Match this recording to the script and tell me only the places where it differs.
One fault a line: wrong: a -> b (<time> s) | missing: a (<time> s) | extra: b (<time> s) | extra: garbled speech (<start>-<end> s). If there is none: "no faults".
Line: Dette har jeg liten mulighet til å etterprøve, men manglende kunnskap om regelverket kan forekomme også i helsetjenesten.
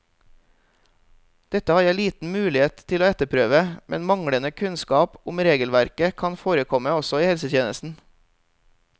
no faults